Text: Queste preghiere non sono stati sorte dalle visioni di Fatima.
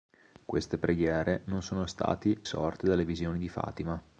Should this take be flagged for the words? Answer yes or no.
no